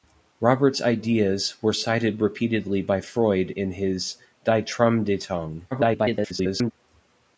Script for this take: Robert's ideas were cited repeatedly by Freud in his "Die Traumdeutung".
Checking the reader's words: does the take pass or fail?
fail